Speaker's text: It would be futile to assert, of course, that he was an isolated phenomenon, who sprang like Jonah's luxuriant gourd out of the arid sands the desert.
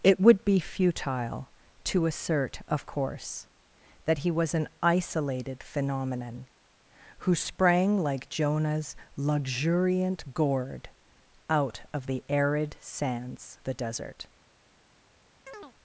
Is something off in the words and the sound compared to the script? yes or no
yes